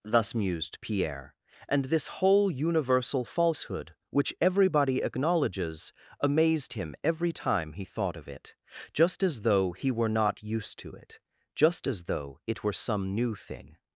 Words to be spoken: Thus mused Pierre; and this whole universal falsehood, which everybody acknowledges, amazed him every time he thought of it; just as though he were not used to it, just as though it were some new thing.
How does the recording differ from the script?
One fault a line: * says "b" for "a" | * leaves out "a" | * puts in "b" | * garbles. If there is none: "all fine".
all fine